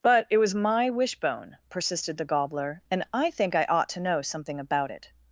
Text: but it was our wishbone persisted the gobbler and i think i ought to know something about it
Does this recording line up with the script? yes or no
no